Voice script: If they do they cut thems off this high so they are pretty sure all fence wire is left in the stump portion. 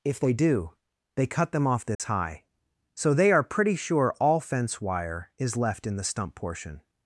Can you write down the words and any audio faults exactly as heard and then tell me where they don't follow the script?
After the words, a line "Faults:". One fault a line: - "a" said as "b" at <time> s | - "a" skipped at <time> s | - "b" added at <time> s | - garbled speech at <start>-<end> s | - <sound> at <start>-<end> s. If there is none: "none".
If they do they cut them off this high so they are pretty sure all fence wire is left in the stump portion.
Faults:
- "thems" said as "them" at 1.5 s
- dropout at 1.9-2.0 s